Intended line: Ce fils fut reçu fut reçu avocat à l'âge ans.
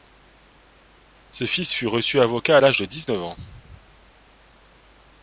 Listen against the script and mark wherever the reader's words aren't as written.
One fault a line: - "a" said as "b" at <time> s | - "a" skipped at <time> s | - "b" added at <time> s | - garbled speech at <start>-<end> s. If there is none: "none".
- "fut reçu" skipped at 2.2 s
- "de dix neuf" added at 2.8 s